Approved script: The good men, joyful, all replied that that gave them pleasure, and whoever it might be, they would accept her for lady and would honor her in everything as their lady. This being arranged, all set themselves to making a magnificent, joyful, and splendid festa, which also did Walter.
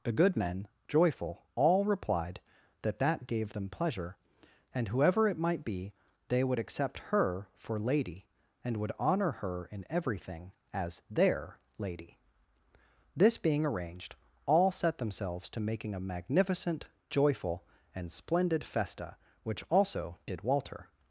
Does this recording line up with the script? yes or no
yes